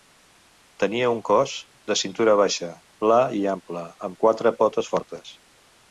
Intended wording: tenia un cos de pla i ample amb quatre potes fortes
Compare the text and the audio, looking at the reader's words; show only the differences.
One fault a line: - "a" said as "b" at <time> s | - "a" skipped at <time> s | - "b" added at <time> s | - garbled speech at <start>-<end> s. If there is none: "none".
- "cintura baixa" added at 2.0 s